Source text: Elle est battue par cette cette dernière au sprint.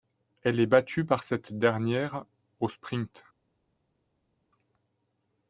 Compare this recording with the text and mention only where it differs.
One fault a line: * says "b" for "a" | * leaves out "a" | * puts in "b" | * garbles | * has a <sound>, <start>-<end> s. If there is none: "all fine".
* leaves out "cette"